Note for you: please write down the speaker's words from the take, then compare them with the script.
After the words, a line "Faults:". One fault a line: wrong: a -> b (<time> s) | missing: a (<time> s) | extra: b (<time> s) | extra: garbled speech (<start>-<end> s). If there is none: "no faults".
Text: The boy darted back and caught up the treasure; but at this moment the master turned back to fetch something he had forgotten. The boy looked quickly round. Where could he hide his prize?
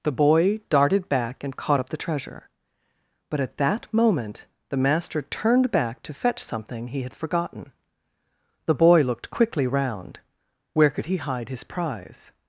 The boy darted back and caught up the treasure; but at that moment the master turned back to fetch something he had forgotten. The boy looked quickly round. Where could he hide his prize?
Faults:
wrong: this -> that (3.6 s)